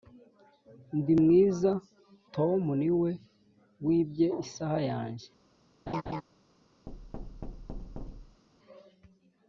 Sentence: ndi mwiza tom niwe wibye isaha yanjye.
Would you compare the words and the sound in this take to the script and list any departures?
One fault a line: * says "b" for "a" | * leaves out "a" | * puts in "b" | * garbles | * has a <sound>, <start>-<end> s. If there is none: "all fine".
* has a laugh, 5.9-6.2 s
* has a thud, 6.9-8.4 s